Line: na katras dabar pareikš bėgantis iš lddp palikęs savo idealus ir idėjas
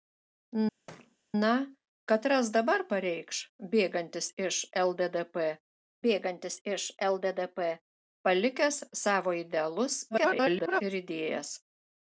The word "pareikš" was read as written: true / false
true